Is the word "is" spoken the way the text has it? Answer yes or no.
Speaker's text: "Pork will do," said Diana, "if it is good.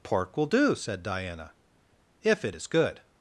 yes